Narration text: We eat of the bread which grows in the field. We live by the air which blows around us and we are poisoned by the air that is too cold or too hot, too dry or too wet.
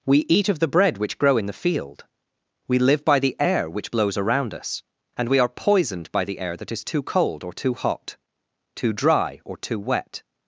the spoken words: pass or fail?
fail